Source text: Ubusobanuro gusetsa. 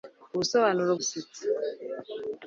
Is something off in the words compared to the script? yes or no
no